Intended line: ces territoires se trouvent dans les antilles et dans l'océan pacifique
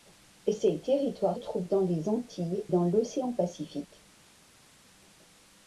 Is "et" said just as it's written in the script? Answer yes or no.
no